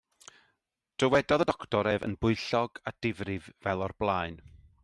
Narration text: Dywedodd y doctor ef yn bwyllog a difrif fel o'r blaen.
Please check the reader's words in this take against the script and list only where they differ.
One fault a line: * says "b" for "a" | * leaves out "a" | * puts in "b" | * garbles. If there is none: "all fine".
all fine